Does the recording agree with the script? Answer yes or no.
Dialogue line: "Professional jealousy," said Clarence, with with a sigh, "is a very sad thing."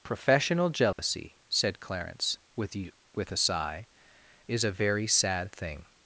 yes